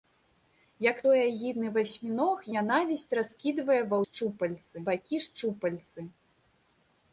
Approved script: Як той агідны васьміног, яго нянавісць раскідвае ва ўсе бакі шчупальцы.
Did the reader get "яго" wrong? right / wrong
wrong